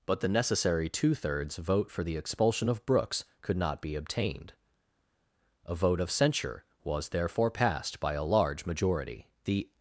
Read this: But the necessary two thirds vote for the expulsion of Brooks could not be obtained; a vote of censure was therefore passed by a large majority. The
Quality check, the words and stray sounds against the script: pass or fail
pass